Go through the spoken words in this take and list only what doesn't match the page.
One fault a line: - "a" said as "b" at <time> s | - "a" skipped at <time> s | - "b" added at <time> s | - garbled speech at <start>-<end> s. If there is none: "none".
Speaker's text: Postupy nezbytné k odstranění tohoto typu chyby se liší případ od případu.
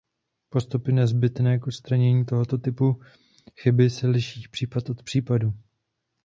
none